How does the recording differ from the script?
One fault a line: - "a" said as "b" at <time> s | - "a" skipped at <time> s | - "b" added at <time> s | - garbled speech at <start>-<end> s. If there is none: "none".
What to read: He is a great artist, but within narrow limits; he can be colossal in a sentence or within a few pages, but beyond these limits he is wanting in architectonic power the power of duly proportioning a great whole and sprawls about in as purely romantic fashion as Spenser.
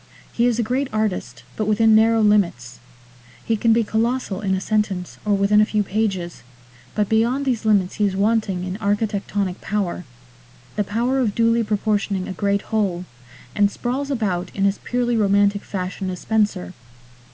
none